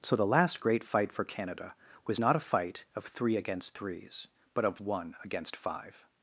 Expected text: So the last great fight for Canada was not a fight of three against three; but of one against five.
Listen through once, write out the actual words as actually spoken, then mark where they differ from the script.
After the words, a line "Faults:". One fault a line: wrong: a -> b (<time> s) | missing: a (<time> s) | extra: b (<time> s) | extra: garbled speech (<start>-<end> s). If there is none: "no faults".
So the last great fight for Canada was not a fight of three against threes; but of one against five.
Faults:
wrong: three -> threes (3.7 s)